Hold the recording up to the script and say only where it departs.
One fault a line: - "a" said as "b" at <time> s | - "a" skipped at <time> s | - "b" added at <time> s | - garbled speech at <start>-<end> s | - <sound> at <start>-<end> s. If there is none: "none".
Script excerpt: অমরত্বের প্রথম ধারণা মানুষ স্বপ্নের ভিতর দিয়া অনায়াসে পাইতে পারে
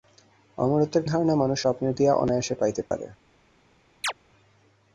- "প্রথম" skipped at 1.0 s
- "ভিতর" skipped at 1.9 s
- dropout at 2.9-2.9 s
- chirp at 4.0-4.1 s